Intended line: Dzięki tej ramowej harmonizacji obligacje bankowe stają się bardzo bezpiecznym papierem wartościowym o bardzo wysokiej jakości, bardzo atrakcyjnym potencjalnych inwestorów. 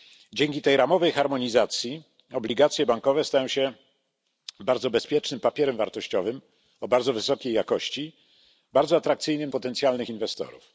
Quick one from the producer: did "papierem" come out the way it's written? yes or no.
yes